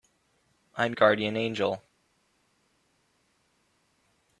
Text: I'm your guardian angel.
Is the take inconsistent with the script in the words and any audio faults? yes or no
yes